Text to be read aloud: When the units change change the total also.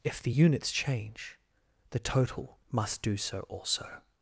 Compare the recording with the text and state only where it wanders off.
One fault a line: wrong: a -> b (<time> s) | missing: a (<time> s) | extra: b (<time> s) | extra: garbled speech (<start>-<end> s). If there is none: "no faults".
wrong: When -> If (0.0 s)
missing: change (1.4 s)
extra: must do so (2.7 s)